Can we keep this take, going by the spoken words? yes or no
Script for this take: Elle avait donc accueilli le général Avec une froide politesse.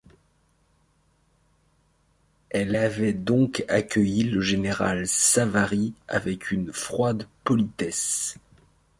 no